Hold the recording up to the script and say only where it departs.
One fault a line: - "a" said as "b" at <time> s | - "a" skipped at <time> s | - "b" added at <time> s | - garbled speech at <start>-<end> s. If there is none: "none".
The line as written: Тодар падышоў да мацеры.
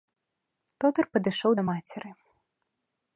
none